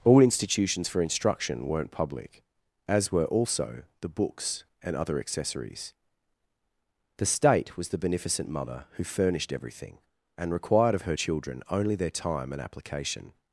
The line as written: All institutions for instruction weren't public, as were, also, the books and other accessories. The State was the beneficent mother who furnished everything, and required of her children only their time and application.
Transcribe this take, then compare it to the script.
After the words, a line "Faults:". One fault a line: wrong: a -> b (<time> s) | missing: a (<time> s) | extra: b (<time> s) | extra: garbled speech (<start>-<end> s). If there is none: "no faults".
All institutions for instruction weren't public, as were, also, the books and other accessories. The State was the beneficent mother who furnished everything, and required of her children only their time and application.
Faults:
no faults